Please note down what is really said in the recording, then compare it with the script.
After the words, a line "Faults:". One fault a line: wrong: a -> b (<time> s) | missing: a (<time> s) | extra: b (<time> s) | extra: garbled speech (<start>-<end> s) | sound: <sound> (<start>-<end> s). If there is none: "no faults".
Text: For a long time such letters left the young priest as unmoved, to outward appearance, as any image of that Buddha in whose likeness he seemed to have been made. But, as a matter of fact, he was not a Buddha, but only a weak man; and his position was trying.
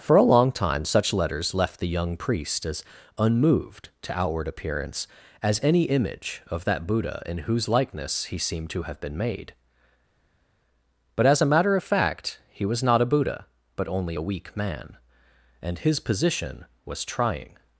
For a long time such letters left the young priest as unmoved, to outward appearance, as any image of that Buddha in whose likeness he seemed to have been made. But, as a matter of fact, he was not a Buddha, but only a weak man; and his position was trying.
Faults:
no faults